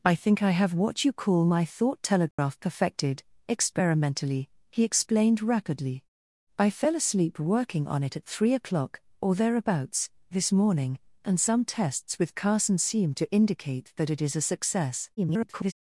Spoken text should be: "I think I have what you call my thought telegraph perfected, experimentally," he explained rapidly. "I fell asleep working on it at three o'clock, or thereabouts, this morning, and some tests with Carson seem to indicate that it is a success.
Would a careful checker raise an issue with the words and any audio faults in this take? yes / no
yes